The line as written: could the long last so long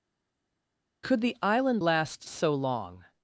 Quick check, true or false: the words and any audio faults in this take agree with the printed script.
false